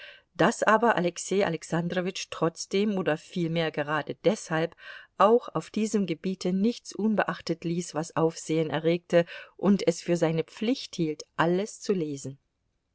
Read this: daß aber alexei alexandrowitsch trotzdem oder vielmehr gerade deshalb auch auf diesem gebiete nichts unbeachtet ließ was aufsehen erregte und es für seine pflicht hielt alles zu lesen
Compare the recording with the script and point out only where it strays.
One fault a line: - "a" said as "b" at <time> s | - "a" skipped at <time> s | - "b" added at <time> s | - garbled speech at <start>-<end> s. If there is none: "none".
none